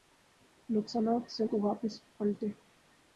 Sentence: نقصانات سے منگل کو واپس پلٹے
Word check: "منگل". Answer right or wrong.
wrong